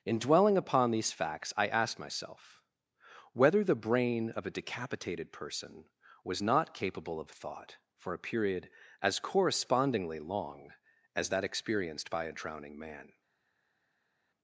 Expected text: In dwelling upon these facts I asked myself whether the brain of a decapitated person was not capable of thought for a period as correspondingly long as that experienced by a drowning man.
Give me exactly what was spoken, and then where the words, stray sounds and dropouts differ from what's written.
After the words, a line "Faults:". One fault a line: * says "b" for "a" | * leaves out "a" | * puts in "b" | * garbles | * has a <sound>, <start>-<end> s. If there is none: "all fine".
In dwelling upon these facts I asked myself whether the brain of a decapitated person was not capable of thought for a period as correspondingly long as that experienced by a drowning man.
Faults:
all fine